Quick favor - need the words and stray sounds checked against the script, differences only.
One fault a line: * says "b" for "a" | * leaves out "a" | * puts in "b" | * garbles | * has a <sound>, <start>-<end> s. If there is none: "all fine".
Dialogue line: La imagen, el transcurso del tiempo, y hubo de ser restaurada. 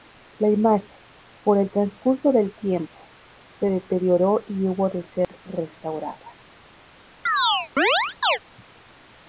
* puts in "por"
* puts in "se deterioró"
* has a dropout, 5.2-5.3 s
* has a chirp, 7.3-8.4 s